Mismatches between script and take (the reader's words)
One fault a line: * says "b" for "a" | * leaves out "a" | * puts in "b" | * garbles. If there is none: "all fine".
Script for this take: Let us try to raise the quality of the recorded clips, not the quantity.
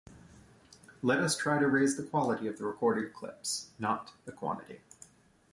all fine